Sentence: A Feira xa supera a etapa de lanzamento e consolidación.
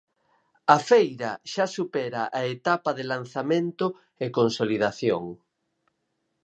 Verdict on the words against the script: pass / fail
pass